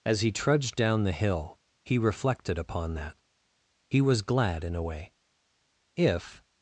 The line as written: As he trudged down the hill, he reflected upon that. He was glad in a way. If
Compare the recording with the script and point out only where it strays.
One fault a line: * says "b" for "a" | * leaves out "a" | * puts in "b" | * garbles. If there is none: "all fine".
all fine